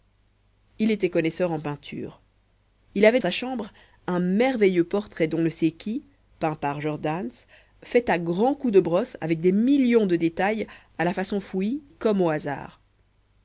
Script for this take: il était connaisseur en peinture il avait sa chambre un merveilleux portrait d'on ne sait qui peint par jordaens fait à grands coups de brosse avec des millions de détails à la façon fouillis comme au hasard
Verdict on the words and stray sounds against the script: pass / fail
pass